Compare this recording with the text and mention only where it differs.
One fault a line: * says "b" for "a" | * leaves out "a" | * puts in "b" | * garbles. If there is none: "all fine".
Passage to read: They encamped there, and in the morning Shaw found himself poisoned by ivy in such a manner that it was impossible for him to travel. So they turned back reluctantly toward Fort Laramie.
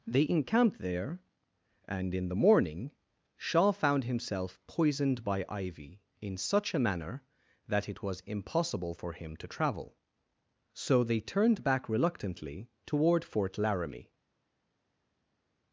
all fine